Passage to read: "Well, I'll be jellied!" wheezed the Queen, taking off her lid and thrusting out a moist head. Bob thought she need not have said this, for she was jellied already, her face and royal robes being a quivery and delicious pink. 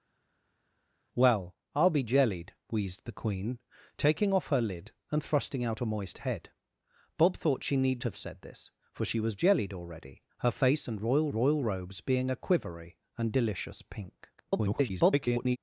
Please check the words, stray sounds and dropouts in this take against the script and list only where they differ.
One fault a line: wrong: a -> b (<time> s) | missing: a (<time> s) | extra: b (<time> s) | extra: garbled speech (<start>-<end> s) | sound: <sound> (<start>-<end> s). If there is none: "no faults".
missing: not (8.0 s)
extra: royal (11.3 s)
extra: garbled speech (14.4-15.6 s)